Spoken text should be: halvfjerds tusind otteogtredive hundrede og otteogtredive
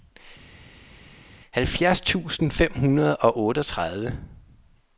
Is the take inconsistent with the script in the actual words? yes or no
yes